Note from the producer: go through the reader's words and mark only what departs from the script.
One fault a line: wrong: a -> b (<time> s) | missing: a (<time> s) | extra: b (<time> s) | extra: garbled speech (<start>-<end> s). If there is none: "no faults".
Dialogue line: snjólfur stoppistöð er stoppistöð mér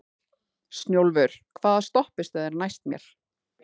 extra: hvaða (1.6 s)
wrong: stoppistöð -> næst (2.6 s)